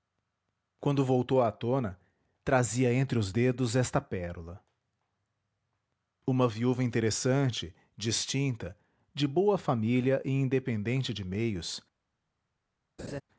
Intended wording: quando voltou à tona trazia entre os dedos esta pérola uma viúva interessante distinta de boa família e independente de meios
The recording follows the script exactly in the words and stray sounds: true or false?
false